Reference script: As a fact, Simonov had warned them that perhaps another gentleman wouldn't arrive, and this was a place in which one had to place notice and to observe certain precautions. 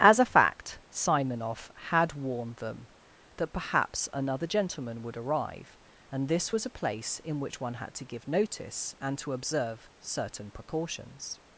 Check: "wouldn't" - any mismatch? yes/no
yes